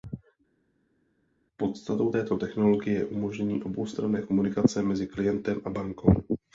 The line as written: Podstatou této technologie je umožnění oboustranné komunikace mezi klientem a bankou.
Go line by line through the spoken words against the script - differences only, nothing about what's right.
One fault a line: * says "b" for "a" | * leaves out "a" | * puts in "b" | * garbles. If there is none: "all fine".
all fine